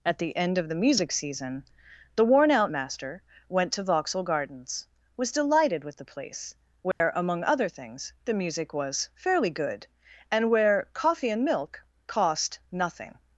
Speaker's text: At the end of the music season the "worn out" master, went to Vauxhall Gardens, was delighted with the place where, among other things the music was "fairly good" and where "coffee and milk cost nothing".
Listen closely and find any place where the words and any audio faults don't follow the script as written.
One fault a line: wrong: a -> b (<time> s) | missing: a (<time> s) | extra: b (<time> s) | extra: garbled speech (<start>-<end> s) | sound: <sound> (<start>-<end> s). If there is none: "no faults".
sound: dropout (6.9-7.0 s)